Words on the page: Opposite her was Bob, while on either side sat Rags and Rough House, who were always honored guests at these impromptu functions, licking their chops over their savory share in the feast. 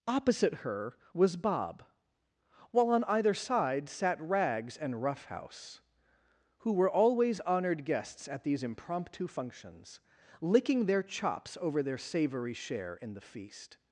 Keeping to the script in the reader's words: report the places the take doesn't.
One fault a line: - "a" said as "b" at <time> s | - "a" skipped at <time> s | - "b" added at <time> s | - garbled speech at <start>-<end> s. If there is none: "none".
none